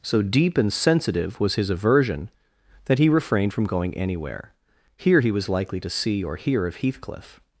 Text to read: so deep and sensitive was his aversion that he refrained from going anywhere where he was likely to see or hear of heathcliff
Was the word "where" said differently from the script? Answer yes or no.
yes